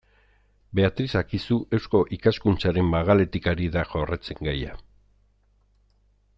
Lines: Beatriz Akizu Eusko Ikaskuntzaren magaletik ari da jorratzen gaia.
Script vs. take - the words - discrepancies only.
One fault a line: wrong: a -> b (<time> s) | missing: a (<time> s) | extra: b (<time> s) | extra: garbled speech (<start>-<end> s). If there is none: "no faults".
no faults